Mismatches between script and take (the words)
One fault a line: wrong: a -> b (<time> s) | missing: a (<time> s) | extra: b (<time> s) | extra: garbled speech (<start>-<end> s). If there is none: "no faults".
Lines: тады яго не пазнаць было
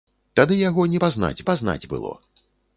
extra: пазнаць (1.5 s)